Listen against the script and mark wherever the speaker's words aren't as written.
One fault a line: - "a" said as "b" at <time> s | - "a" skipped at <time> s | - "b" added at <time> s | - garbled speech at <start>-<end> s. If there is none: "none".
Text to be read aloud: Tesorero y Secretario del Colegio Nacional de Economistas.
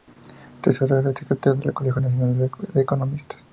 none